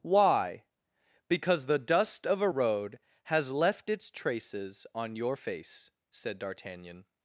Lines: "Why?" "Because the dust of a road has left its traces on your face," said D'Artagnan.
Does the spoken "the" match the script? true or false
true